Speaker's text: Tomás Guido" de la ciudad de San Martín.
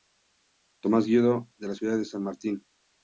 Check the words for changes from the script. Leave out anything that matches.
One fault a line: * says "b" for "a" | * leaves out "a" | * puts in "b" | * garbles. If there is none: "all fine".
all fine